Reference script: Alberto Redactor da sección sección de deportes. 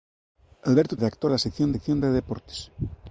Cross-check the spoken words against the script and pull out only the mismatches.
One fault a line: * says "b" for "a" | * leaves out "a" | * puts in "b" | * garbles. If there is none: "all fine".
all fine